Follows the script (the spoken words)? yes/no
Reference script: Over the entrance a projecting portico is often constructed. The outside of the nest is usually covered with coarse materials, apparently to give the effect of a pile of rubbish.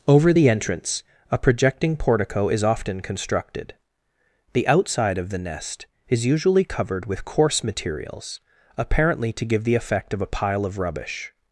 yes